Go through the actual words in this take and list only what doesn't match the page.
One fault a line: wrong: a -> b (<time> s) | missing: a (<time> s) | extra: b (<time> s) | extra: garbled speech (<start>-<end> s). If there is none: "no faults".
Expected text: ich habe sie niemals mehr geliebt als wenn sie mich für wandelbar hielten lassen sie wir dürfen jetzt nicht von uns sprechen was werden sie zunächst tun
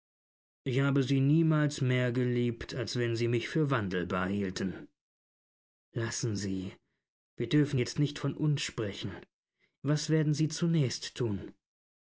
no faults